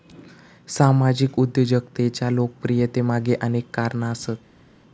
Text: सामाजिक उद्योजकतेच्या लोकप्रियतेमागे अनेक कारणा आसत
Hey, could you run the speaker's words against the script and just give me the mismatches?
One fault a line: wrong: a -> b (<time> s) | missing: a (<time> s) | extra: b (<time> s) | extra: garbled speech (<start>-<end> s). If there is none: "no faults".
no faults